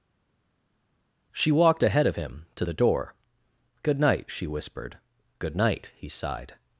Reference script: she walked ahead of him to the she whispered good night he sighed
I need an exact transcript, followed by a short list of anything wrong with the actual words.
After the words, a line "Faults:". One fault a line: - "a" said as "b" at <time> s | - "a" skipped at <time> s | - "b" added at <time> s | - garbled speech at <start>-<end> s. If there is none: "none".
she walked ahead of him to the door good night she whispered good night he sighed
Faults:
- "door good night" added at 2.7 s